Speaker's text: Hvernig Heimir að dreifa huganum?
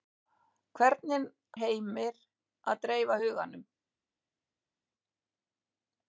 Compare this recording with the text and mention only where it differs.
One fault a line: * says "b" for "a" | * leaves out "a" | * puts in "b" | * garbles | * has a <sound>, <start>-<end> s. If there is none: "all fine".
all fine